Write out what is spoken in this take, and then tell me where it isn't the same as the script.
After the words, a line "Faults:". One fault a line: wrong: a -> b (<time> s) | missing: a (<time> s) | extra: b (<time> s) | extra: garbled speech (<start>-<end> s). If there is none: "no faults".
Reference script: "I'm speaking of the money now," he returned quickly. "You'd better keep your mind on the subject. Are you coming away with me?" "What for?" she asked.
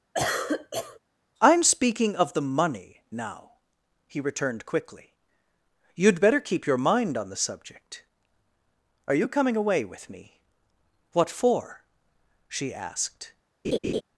"I'm speaking of the money now," he returned quickly. "You'd better keep your mind on the subject. Are you coming away with me?" "What for?" she asked.
Faults:
no faults